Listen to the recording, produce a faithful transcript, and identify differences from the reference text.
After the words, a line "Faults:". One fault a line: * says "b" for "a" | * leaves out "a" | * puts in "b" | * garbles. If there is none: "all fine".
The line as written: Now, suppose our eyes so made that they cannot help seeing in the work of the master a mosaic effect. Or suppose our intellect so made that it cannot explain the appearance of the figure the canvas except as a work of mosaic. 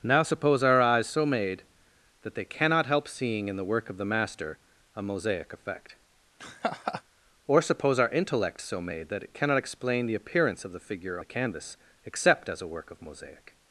Now, suppose our eyes so made that they cannot help seeing in the work of the master a mosaic effect. Or suppose our intellect so made that it cannot explain the appearance of the figure the canvas except as a work of mosaic.
Faults:
all fine